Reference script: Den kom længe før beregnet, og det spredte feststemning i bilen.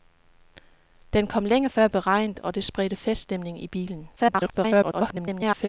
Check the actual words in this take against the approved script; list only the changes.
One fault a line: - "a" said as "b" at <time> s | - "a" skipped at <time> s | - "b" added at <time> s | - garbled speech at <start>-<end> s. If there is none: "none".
- garbled speech at 4.2-5.7 s